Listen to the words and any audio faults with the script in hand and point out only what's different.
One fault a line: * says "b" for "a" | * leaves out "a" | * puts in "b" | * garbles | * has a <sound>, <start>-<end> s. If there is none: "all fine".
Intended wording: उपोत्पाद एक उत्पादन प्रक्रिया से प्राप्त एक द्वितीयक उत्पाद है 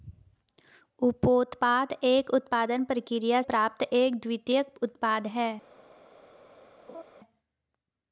* leaves out "से"
* has a laugh, 6.9-7.0 s